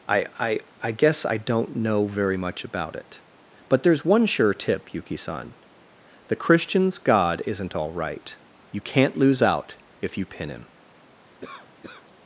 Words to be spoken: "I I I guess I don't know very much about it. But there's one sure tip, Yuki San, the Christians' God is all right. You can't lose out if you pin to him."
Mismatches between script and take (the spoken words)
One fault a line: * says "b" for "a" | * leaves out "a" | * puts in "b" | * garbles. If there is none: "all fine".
* says "isn't" for "is"
* leaves out "to"